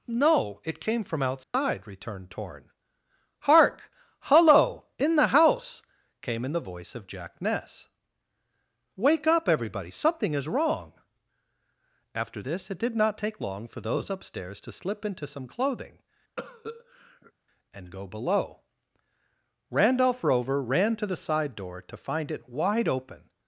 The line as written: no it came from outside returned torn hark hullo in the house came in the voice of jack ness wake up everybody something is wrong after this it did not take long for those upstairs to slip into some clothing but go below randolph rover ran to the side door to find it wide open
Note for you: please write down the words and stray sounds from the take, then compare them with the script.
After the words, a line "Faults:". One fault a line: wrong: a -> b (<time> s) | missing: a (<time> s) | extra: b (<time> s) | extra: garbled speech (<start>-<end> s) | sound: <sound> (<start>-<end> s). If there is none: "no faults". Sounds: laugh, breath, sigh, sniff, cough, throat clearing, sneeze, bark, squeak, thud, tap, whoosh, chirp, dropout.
no it came from outside returned torn hark hullo in the house came in the voice of jack ness wake up everybody something is wrong after this it did not take long for those upstairs to slip into some clothing and go below randolph rover ran to the side door to find it wide open
Faults:
sound: dropout (1.4-1.5 s)
sound: cough (16.4-17.3 s)
wrong: but -> and (17.7 s)